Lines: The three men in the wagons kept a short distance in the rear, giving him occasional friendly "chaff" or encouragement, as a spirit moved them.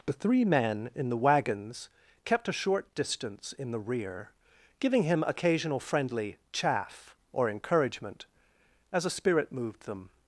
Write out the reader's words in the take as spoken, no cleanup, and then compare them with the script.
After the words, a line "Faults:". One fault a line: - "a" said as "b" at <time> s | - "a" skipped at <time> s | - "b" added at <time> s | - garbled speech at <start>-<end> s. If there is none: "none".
The three men in the wagons kept a short distance in the rear, giving him occasional friendly "chaff" or encouragement, as a spirit moved them.
Faults:
none